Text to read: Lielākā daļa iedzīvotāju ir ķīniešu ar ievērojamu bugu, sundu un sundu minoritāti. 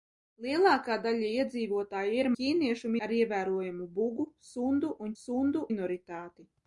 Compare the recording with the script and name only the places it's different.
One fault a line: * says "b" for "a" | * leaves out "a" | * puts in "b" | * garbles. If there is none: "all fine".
all fine